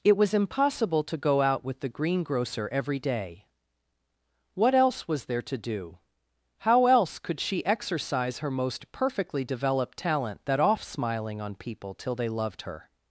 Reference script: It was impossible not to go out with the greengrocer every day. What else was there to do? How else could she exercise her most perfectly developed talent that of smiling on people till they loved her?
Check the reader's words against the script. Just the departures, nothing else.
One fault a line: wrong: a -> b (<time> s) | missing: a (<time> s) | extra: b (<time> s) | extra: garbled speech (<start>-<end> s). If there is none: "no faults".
missing: not (1.0 s)
wrong: of -> off (10.6 s)